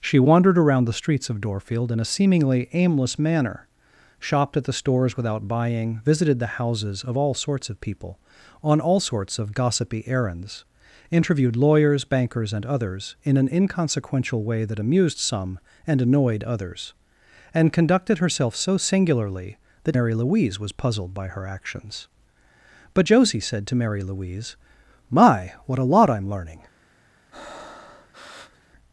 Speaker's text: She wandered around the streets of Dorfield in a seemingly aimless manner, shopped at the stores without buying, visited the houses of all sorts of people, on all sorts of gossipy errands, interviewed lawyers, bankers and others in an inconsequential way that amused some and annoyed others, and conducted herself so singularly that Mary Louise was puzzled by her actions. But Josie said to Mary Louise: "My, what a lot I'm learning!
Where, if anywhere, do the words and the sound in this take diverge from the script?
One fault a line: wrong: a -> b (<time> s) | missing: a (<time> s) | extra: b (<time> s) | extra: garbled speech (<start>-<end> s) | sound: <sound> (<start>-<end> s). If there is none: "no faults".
sound: breath (27.3-28.7 s)